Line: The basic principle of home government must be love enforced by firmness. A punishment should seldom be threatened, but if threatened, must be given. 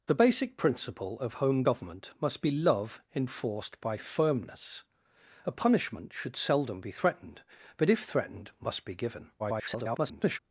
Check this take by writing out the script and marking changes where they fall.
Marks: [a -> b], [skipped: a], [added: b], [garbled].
The basic principle of home government must be love enforced by firmness. A punishment should seldom be threatened, but if threatened, must be given. [garbled]